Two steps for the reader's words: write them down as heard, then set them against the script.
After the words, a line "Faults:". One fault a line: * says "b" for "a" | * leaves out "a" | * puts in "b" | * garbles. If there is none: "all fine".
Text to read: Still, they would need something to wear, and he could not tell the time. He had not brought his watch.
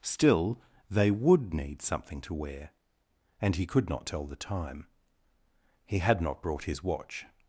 Still, they would need something to wear, and he could not tell the time. He had not brought his watch.
Faults:
all fine